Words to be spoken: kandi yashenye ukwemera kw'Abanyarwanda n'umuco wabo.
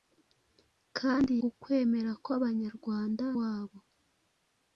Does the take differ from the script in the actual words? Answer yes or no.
yes